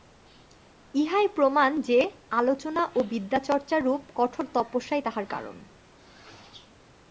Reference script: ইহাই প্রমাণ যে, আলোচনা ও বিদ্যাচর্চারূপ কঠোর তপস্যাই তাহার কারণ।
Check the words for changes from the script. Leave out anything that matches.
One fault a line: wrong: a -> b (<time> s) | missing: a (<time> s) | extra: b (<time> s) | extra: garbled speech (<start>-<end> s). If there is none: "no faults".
no faults